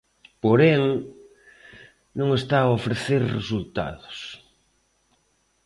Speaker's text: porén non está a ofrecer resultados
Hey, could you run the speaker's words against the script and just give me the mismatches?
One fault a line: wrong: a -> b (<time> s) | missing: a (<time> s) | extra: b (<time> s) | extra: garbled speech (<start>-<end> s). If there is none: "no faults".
no faults